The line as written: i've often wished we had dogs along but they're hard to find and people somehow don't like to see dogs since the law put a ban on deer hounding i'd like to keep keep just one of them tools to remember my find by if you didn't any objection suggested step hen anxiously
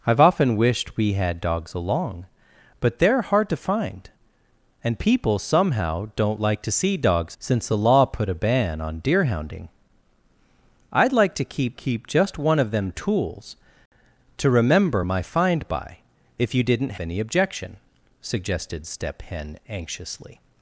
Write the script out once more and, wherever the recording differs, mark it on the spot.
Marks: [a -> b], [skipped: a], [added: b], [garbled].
i've often wished we had dogs along but they're hard to find and people somehow don't like to see dogs since the law put a ban on deer hounding i'd like to keep keep just one of them tools to remember my find by if you didn't any objection suggested step hen anxiously